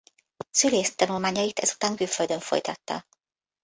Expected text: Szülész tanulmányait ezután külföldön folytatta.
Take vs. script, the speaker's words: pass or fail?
pass